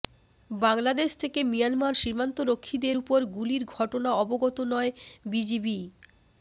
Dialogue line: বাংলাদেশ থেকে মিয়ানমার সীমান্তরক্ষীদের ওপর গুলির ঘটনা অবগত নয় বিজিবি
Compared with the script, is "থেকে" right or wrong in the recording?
right